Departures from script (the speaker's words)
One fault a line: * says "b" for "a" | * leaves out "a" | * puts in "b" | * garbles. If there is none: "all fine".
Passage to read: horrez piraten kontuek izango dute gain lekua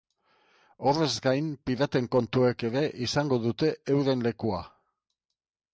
* puts in "gain"
* puts in "ere"
* says "euren" for "gain"